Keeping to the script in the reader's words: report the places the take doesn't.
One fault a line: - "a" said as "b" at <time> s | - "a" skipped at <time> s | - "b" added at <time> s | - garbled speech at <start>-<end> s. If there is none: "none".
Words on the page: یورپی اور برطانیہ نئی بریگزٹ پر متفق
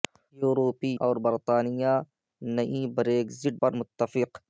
none